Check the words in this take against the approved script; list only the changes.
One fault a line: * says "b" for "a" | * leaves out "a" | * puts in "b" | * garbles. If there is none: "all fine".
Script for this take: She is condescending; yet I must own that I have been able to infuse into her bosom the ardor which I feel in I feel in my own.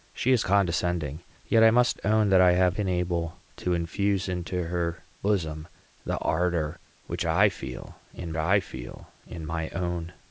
all fine